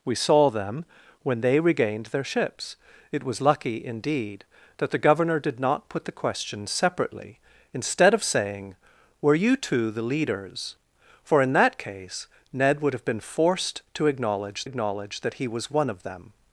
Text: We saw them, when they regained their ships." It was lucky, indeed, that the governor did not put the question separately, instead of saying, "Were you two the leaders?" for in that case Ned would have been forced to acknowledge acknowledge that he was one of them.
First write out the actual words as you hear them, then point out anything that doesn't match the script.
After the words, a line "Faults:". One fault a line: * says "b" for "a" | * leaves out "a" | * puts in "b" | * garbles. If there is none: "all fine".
We saw them, when they regained their ships." It was lucky, indeed, that the governor did not put the question separately, instead of saying, "Were you two the leaders?" for in that case Ned would have been forced to acknowledge acknowledge that he was one of them.
Faults:
all fine